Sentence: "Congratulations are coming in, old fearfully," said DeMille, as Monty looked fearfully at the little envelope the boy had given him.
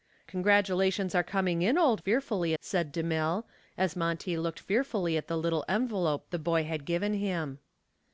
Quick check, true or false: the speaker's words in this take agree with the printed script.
true